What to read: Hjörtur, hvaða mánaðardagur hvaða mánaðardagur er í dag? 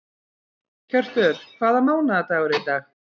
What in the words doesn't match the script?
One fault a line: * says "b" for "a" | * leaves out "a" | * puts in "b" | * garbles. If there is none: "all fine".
* leaves out "hvaða mánaðardagur"